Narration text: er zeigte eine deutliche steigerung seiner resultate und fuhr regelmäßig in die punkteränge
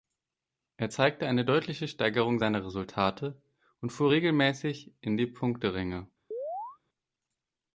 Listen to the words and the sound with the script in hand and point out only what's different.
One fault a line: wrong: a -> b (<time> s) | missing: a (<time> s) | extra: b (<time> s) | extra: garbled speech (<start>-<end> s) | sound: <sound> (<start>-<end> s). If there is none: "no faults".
sound: chirp (6.3-6.8 s)